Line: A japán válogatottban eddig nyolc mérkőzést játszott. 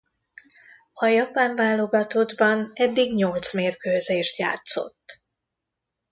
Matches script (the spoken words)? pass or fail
pass